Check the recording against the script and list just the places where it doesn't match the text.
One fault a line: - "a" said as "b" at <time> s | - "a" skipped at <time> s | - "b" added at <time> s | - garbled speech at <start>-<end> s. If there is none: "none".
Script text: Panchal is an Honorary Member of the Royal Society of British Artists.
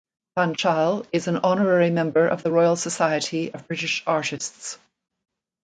none